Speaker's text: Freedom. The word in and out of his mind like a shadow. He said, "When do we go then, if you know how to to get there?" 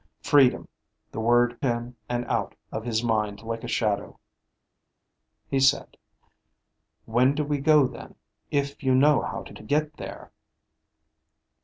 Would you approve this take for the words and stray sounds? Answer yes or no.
yes